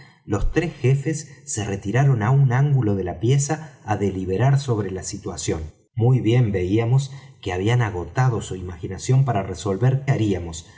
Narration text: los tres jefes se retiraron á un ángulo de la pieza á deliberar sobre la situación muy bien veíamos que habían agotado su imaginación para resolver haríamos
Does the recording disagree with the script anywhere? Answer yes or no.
no